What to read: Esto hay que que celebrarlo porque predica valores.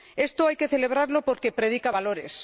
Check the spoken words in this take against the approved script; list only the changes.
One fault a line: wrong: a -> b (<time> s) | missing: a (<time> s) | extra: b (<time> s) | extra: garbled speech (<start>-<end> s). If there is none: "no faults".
missing: que (0.7 s)